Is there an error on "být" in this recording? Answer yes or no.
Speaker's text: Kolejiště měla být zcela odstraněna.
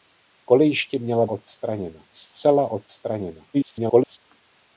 yes